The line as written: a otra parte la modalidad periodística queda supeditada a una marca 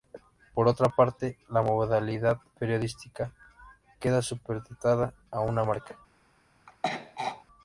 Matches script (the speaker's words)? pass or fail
fail